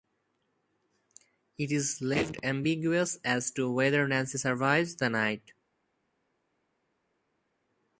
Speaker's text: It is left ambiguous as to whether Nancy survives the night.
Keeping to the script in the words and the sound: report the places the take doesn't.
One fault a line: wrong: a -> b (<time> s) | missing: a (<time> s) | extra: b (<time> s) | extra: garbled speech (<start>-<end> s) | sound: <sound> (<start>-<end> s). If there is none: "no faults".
no faults